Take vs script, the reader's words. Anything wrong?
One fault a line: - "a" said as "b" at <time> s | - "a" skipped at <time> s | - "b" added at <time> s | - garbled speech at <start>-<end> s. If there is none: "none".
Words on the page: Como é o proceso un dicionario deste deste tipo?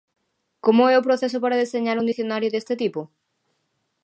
- "para deseñar" added at 1.4 s
- "deste" skipped at 2.7 s